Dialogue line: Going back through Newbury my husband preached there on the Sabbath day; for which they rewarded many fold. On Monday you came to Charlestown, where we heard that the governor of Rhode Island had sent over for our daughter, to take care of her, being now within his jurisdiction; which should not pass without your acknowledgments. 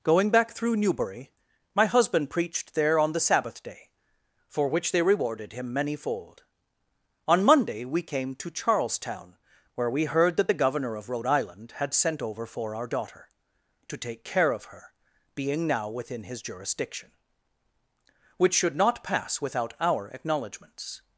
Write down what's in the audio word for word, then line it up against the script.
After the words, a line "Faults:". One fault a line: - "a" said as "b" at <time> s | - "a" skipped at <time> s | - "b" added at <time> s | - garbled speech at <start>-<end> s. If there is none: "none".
Going back through Newbury my husband preached there on the Sabbath day; for which they rewarded him many fold. On Monday we came to Charlestown, where we heard that the governor of Rhode Island had sent over for our daughter, to take care of her, being now within his jurisdiction; which should not pass without our acknowledgments.
Faults:
- "him" added at 5.5 s
- "you" said as "we" at 7.8 s
- "your" said as "our" at 19.8 s